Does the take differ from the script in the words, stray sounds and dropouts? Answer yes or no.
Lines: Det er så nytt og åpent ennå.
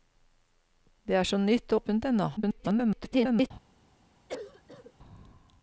yes